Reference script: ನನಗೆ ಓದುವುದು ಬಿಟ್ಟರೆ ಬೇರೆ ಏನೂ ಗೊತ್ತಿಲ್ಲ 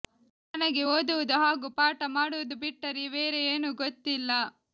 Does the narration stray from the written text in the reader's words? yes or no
yes